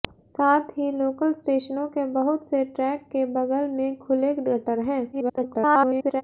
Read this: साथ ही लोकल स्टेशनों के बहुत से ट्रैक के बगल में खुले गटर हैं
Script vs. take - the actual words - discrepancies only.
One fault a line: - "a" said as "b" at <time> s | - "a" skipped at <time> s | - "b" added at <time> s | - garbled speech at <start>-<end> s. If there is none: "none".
- garbled speech at 5.1-6.2 s